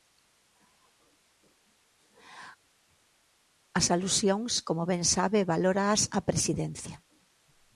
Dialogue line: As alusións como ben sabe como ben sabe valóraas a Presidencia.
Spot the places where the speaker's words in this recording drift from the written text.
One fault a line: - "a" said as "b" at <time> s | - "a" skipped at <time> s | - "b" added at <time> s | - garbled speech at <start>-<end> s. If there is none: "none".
- "como ben sabe" skipped at 5.4 s